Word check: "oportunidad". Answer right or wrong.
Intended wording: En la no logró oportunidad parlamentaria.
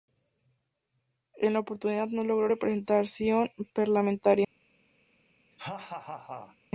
wrong